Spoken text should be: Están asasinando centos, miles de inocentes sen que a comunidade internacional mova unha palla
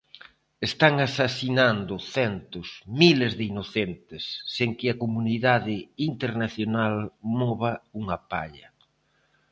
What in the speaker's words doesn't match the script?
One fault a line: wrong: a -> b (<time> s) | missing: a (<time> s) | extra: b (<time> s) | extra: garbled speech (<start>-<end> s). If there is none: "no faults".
no faults